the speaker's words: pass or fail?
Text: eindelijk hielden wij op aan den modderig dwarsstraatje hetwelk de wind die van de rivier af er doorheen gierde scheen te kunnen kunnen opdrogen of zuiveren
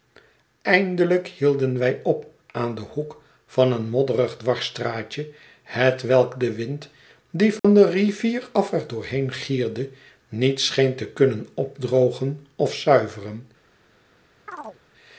fail